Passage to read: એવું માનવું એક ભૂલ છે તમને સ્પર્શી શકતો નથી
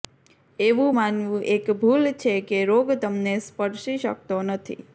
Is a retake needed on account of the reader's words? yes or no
yes